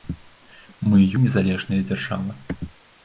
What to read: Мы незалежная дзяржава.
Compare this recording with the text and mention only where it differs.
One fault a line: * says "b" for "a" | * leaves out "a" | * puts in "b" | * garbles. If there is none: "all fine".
all fine